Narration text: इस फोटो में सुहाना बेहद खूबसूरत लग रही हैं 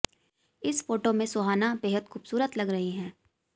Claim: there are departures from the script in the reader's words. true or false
false